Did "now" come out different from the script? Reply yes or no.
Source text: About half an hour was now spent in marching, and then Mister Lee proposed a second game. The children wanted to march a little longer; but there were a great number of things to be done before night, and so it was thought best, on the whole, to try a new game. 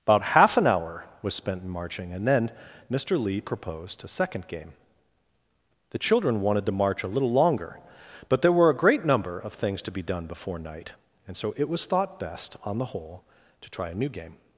yes